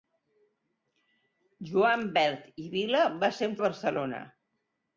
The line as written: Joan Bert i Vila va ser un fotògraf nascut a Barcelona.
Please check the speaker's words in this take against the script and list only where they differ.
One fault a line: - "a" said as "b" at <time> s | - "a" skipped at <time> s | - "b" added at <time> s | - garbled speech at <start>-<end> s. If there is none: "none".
- "fotògraf nascut" skipped at 3.6 s